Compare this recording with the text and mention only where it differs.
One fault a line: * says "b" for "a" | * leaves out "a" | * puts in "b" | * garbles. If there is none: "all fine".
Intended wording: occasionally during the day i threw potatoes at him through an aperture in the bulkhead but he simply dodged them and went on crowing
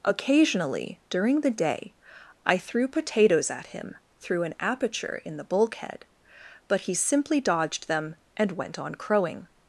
all fine